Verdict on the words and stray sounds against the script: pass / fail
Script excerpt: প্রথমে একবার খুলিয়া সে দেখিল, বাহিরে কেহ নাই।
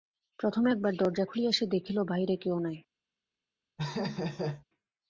fail